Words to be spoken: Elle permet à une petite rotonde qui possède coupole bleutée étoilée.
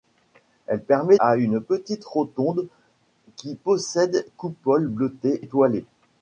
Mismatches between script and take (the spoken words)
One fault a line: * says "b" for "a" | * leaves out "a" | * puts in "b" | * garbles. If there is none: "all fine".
all fine